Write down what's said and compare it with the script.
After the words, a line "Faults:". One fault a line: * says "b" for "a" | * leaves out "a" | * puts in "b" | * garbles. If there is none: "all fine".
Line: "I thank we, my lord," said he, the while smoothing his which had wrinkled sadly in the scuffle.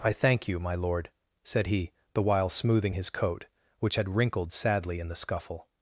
"I thank you, my lord," said he, the while smoothing his coat, which had wrinkled sadly in the scuffle.
Faults:
* says "you" for "we"
* puts in "coat"